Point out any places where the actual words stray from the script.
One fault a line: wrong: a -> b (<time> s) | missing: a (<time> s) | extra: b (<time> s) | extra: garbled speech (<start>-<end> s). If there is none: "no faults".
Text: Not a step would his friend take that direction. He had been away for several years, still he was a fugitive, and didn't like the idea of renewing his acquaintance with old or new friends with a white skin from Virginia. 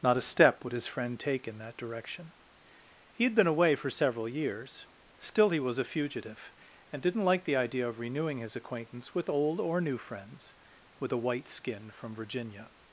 extra: in (1.5 s)